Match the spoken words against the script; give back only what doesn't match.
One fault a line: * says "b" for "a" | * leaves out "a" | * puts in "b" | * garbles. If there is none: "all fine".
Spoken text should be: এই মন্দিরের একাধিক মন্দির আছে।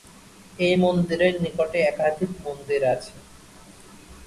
* puts in "নিকটে"